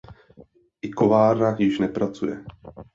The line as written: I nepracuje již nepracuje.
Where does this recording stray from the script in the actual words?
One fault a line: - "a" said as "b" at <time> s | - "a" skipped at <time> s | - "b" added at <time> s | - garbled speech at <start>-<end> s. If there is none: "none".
- "nepracuje" said as "kovárna" at 0.9 s